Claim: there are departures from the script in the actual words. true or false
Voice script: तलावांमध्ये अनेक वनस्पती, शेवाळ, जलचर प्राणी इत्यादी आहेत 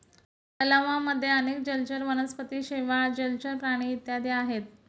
true